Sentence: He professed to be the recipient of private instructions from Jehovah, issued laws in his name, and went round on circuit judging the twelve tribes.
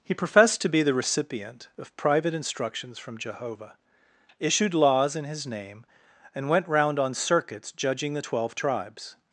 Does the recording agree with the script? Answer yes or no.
no